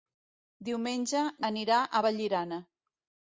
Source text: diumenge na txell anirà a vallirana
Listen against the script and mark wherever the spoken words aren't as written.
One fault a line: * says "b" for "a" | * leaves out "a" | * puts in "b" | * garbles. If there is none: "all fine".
* leaves out "na txell"